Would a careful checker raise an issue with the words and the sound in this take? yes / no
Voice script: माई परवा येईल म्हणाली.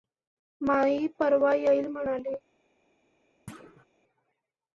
yes